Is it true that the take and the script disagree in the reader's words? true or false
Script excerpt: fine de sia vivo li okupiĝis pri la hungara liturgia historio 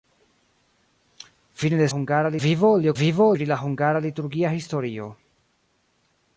true